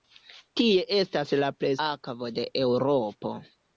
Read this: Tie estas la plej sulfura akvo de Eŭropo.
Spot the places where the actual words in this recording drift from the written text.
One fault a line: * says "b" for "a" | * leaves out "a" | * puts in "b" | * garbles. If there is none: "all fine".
* leaves out "sulfura"